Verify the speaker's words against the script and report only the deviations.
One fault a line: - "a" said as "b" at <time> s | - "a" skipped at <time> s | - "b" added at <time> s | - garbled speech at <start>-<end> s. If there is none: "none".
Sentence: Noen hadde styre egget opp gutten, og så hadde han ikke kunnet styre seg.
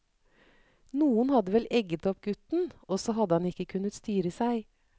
- "styre" said as "vel" at 1.6 s